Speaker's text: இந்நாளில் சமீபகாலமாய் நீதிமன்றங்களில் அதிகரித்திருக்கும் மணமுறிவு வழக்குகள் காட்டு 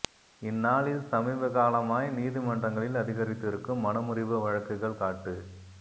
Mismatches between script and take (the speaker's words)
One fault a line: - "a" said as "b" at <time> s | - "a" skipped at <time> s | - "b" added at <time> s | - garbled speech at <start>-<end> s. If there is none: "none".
none